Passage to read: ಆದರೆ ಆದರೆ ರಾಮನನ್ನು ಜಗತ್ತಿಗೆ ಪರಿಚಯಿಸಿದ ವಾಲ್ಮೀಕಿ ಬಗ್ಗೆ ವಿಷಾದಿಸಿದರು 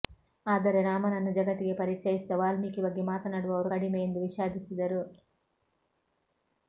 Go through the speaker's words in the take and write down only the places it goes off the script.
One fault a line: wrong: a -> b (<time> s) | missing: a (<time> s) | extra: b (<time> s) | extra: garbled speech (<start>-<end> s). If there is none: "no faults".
missing: ಆದರೆ (0.8 s)
extra: ಮಾತನಾಡುವವರು ಕಡಿಮೆ ಎಂದು (3.1 s)